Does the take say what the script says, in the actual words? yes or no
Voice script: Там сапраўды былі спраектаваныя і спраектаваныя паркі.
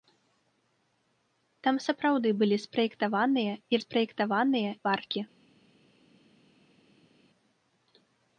yes